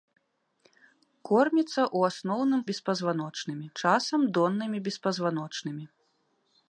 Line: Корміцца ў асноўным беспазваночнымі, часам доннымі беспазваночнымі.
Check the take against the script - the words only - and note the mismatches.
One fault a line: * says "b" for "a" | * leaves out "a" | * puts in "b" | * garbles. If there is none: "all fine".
all fine